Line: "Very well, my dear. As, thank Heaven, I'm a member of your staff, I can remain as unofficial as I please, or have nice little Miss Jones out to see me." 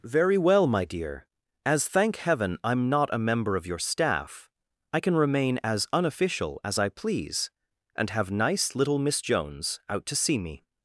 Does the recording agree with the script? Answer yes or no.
no